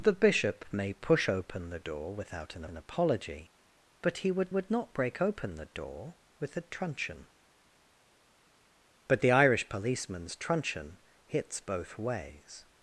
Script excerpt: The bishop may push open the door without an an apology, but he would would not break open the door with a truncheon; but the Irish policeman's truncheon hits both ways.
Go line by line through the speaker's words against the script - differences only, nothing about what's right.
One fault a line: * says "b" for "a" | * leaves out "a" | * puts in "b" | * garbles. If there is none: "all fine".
all fine